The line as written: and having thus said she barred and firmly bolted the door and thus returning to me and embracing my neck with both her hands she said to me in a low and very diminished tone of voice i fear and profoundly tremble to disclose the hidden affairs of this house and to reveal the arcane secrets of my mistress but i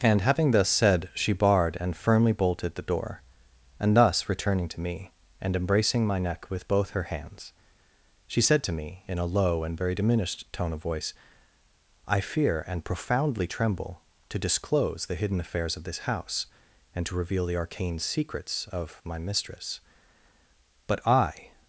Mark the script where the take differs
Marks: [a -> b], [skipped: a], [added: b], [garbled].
and having thus said she barred and firmly bolted the door and thus returning to me and embracing my neck with both her hands she said to me in a low and very diminished tone of voice i fear and profoundly tremble to disclose the hidden affairs of this house and to reveal the arcane secrets of my mistress but i